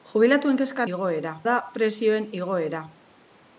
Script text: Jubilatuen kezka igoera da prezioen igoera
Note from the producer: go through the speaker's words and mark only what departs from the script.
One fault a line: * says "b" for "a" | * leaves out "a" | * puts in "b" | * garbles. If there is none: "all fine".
all fine